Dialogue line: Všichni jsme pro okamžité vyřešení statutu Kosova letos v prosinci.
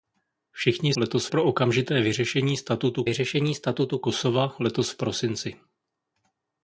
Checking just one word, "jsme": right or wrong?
wrong